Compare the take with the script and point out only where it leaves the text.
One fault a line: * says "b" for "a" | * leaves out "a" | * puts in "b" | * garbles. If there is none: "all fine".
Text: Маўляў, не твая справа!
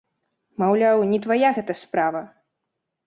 * puts in "гэта"